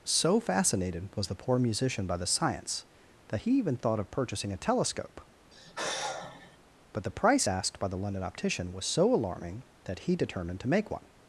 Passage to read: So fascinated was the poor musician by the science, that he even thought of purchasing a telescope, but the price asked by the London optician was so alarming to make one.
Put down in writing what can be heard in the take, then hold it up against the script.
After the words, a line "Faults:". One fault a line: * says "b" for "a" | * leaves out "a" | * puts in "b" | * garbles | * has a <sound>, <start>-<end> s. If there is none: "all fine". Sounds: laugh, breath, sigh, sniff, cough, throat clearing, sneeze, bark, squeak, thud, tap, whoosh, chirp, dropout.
So fascinated was the poor musician by the science, that he even thought of purchasing a telescope, but the price asked by the London optician was so alarming that he determined to make one.
Faults:
* has a sigh, 5.5-6.6 s
* puts in "that he determined"